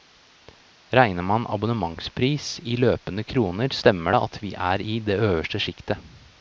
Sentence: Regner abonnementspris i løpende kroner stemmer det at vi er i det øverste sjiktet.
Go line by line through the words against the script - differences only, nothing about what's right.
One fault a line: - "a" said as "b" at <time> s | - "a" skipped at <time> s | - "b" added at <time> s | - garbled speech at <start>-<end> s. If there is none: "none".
- "man" added at 1.2 s